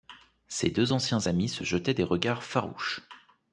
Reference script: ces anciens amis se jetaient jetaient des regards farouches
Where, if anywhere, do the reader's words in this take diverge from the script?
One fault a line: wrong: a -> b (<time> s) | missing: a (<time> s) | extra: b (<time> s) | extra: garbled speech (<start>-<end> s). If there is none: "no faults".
extra: deux (0.7 s)
missing: jetaient (1.9 s)